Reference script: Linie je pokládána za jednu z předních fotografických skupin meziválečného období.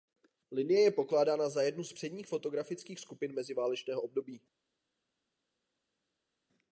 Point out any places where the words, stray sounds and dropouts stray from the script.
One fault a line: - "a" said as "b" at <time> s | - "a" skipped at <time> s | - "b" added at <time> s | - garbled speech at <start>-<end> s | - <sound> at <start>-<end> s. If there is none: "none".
none